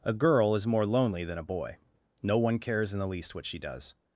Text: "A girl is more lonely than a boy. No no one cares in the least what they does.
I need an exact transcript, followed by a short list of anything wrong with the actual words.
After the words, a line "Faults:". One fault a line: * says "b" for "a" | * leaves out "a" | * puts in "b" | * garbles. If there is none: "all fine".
"A girl is more lonely than a boy. No one cares in the least what she does.
Faults:
* leaves out "no"
* says "she" for "they"